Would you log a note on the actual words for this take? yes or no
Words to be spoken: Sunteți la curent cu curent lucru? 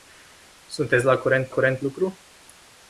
no